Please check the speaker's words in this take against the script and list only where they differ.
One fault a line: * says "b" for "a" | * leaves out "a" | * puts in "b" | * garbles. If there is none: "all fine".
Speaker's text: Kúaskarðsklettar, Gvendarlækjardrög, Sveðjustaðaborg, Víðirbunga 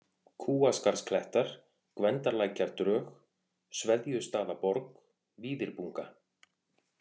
all fine